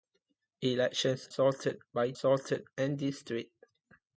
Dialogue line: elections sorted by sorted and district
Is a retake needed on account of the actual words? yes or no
no